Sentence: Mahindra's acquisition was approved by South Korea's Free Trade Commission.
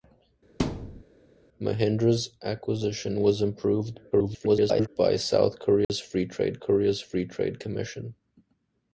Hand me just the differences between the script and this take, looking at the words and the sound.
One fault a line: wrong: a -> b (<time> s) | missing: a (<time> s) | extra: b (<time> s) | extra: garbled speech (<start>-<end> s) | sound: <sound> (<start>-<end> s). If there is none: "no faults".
sound: thud (0.6-1.0 s)
extra: garbled speech (4.1-4.9 s)
sound: dropout (5.8-5.9 s)
extra: Korea's Free Trade (6.6 s)